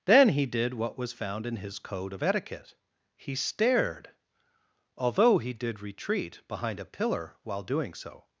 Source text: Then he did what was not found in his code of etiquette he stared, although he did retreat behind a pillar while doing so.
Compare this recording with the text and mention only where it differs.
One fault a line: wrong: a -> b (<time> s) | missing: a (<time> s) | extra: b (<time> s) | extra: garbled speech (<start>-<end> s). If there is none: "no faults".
missing: not (1.1 s)